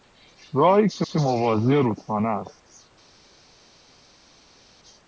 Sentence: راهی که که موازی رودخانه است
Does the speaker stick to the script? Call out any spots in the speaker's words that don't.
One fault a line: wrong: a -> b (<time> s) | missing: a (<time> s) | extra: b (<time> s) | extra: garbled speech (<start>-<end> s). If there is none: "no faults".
no faults